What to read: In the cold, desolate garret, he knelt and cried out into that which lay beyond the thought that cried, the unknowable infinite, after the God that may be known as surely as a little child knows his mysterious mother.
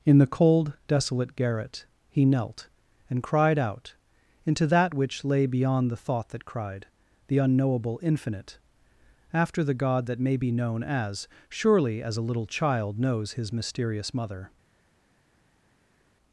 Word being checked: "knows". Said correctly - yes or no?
yes